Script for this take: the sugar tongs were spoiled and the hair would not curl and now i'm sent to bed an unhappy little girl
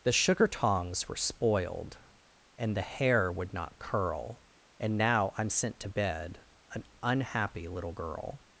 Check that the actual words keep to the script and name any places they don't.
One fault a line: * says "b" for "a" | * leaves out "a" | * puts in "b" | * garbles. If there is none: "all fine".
all fine